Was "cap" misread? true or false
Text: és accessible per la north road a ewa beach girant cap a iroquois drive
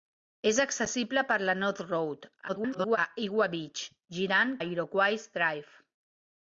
true